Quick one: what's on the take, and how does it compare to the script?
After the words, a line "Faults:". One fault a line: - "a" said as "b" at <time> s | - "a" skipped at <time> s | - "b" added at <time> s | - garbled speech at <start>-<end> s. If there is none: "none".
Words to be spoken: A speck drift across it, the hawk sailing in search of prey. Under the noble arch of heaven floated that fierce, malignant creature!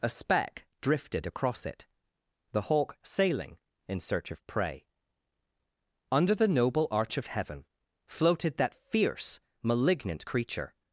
A speck drifted across it, the hawk sailing in search of prey. Under the noble arch of heaven floated that fierce, malignant creature!
Faults:
- "drift" said as "drifted" at 0.8 s